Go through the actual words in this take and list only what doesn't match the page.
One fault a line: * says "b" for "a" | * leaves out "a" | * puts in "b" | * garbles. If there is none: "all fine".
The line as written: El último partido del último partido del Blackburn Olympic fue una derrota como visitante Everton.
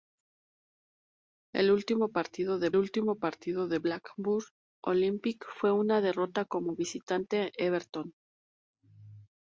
all fine